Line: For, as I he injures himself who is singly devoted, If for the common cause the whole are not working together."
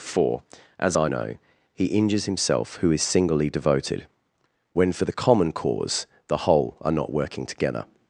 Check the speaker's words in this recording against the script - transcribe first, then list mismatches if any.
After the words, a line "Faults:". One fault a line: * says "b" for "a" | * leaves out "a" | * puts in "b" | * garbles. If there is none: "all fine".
For, as I know, he injures himself who is singly devoted, When for the common cause the whole are not working together."
Faults:
* puts in "know"
* says "When" for "If"